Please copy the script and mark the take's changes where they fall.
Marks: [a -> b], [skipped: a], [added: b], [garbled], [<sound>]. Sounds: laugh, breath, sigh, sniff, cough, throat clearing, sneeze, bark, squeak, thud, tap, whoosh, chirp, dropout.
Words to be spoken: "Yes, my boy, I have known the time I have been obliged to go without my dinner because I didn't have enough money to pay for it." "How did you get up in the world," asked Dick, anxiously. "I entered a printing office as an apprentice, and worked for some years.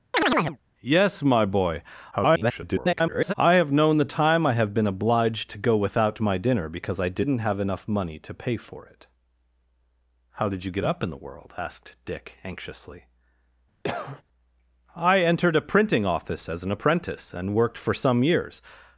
[chirp] "Yes, my boy, [garbled] I have known the time I have been obliged to go without my dinner because I didn't have enough money to pay for it." "How did you get up in the world," asked Dick, anxiously. [cough] "I entered a printing office as an apprentice, and worked for some years.